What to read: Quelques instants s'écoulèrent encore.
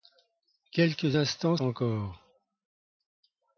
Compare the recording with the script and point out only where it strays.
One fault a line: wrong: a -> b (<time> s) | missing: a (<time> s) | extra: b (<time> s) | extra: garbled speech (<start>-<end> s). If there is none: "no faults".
missing: s'écoulèrent (1.6 s)